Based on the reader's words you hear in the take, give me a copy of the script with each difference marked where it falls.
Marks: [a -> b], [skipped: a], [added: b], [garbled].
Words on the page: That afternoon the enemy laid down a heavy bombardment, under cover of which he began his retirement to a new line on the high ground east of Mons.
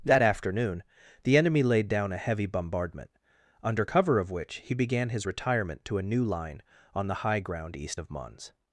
That afternoon the enemy laid down a heavy bombardment, under cover of which he began his retirement to a new line on the high ground east of Mons.